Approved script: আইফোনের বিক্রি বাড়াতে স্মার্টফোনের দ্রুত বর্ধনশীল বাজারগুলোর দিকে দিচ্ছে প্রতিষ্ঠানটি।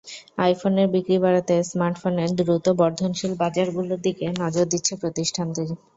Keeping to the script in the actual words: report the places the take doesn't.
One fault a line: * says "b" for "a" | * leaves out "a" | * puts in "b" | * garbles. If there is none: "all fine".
* puts in "নজর"